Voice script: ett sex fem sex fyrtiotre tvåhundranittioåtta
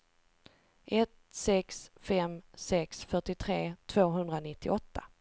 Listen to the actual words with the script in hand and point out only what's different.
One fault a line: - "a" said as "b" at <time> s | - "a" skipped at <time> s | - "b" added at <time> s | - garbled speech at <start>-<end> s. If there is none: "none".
none